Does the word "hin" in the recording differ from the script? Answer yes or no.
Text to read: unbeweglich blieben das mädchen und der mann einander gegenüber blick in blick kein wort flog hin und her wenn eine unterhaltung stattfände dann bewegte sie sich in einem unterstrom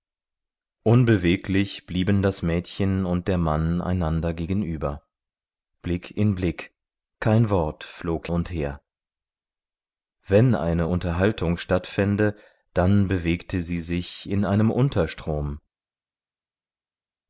yes